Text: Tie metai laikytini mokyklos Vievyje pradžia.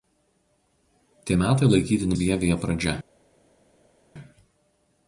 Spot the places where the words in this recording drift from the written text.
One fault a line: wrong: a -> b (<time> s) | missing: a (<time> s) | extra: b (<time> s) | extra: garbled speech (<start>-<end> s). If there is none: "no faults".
missing: mokyklos (2.1 s)